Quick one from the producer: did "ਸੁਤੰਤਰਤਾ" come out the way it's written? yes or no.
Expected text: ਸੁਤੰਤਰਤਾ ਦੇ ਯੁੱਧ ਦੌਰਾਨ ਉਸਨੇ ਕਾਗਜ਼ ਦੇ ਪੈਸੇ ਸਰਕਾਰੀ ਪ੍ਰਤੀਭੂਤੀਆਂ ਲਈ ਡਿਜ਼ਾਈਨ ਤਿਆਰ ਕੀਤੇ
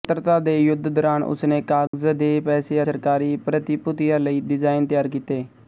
yes